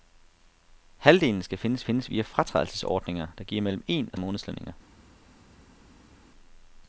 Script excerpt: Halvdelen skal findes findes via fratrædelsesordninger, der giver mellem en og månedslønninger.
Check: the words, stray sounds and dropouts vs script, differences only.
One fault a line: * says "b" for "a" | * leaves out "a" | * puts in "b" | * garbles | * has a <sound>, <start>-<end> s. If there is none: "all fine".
all fine